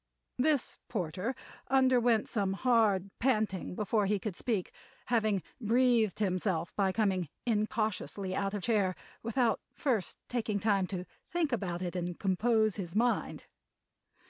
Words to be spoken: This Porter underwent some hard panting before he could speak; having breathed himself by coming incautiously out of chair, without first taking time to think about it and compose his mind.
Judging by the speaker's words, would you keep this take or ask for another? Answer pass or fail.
pass